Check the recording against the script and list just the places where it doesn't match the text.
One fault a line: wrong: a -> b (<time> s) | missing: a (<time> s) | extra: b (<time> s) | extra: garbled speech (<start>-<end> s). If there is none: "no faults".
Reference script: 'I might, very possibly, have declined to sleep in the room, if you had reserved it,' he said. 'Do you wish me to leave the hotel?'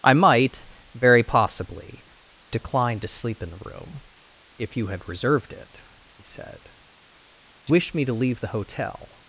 missing: have (2.0 s)
missing: you (7.7 s)